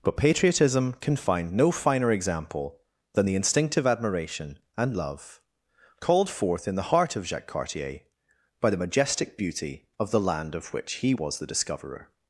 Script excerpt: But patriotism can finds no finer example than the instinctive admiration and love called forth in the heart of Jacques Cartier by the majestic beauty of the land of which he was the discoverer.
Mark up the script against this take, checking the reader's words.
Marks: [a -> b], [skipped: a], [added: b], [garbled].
But patriotism can [finds -> find] no finer example than the instinctive admiration and love called forth in the heart of Jacques Cartier by the majestic beauty of the land of which he was the discoverer.